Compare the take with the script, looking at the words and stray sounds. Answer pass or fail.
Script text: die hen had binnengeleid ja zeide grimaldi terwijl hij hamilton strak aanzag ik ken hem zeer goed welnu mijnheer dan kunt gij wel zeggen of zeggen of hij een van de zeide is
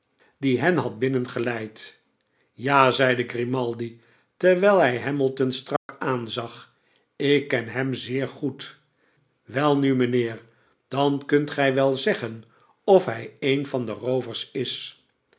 fail